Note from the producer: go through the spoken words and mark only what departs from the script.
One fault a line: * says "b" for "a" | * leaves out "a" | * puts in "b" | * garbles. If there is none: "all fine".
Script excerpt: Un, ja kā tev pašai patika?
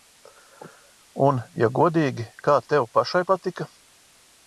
* puts in "godīgi"